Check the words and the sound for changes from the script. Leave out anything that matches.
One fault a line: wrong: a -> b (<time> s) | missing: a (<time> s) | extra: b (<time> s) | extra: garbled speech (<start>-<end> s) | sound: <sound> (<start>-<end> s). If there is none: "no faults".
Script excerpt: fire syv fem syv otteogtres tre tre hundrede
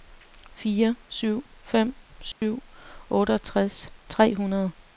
sound: dropout (2.3-2.4 s)
missing: tre (4.3 s)